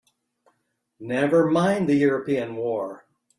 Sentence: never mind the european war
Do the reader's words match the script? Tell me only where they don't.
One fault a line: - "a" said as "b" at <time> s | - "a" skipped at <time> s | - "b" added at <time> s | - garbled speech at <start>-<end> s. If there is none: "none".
none